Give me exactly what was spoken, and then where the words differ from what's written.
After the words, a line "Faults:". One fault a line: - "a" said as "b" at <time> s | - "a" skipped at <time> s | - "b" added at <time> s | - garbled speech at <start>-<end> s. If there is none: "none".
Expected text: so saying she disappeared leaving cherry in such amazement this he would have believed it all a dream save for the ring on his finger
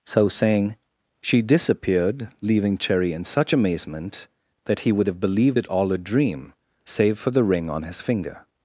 so saying she disappeared leaving cherry in such amazement that he would have believed it all a dream save for the ring on his finger
Faults:
- "this" said as "that" at 4.7 s